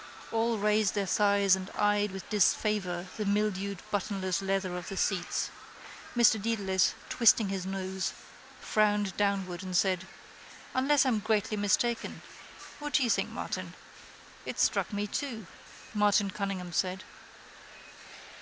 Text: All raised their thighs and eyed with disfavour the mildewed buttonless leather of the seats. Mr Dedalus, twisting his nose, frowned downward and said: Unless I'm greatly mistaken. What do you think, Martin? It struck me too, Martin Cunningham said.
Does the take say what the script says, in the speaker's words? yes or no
yes